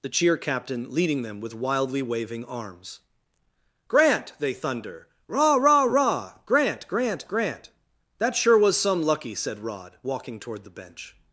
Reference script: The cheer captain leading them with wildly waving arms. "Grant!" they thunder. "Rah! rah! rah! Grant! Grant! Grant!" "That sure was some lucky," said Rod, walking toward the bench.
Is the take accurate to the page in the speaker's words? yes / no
yes